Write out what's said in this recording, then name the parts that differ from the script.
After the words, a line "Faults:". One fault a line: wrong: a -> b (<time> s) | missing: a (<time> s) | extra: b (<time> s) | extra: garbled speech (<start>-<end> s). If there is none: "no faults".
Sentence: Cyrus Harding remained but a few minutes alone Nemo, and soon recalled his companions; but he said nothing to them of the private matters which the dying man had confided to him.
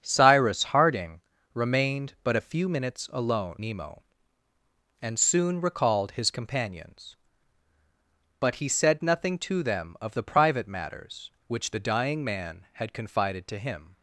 Cyrus Harding remained but a few minutes alone Nemo, and soon recalled his companions; but he said nothing to them of the private matters which the dying man had confided to him.
Faults:
no faults